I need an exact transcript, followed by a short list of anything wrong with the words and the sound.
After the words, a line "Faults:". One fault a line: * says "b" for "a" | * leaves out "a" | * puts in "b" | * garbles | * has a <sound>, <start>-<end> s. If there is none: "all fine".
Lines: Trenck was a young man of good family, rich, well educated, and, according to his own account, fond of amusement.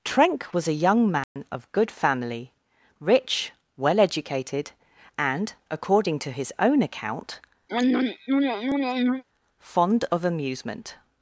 Trenck was a young man of good family, rich, well educated, and, according to his own account, fond of amusement.
Faults:
* has a dropout, 1.2-1.4 s
* has a throat clearing, 7.7-9.2 s